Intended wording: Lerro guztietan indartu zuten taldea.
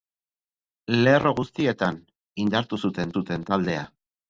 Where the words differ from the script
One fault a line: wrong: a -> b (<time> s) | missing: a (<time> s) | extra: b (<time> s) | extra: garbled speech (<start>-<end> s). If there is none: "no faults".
extra: zuten (3.2 s)